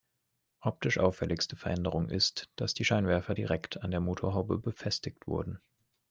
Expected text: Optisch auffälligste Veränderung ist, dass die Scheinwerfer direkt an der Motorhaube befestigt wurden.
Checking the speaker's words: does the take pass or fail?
pass